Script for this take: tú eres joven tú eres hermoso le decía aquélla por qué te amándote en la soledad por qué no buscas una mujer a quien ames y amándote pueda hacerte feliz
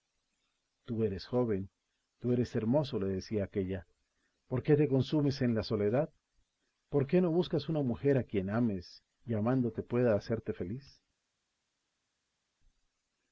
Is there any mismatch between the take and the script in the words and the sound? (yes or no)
yes